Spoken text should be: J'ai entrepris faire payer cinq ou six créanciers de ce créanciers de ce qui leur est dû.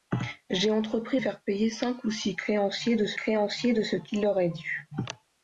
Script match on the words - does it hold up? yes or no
yes